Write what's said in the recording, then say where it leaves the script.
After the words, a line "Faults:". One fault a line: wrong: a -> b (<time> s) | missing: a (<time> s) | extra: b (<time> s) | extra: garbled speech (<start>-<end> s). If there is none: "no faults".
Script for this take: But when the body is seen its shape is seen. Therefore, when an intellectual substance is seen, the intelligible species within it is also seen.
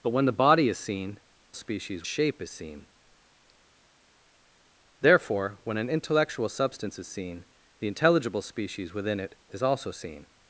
But when the body is seen species shape is seen. Therefore, when an intellectual substance is seen, the intelligible species within it is also seen.
Faults:
wrong: its -> species (1.5 s)